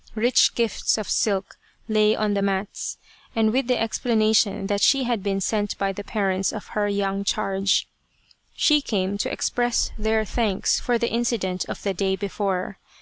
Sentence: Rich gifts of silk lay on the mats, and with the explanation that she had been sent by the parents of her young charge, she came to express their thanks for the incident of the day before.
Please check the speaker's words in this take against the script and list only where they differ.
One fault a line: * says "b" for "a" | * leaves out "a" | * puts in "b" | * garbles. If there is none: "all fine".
all fine